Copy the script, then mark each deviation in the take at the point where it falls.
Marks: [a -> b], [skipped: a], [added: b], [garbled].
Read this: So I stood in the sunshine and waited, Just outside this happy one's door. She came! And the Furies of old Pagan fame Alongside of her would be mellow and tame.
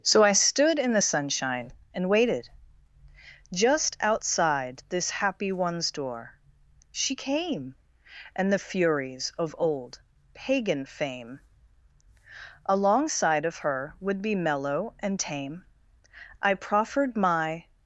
So I stood in the sunshine and waited, Just outside this happy one's door. She came! And the Furies of old Pagan fame Alongside of her would be mellow and tame. [added: I proffered my]